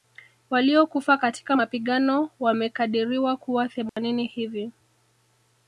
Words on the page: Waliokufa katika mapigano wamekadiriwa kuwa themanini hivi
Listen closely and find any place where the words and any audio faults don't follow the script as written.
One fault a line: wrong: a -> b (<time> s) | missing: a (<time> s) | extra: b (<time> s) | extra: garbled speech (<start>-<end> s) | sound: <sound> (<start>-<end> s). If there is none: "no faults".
sound: dropout (3.9-4.0 s)